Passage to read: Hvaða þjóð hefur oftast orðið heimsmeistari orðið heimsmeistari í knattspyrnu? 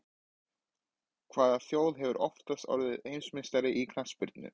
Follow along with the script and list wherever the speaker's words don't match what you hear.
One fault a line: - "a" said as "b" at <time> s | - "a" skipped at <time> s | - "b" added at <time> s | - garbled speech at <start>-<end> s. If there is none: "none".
- "orðið heimsmeistari" skipped at 3.7 s